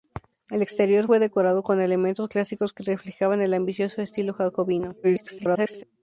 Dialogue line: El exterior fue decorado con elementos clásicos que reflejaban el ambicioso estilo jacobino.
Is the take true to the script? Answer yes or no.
no